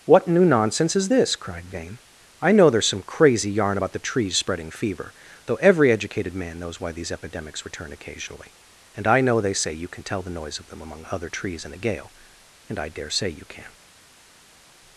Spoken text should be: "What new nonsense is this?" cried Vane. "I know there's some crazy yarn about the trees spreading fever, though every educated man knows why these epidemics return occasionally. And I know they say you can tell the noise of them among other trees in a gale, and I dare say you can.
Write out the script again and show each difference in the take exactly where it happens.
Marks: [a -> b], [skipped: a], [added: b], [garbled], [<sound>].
"What new nonsense is this?" cried Vane. "I know there's some crazy yarn about the trees spreading fever, though every educated man knows why these epidemics return occasionally. And I know they say you can tell the noise of them among other trees in a gale, and I dare say you can.